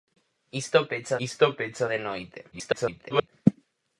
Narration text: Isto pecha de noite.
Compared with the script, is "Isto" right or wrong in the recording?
right